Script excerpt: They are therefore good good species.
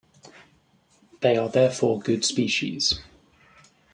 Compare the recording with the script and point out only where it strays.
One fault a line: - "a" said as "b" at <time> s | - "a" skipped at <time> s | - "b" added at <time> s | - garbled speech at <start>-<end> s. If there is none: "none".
- "good" skipped at 2.2 s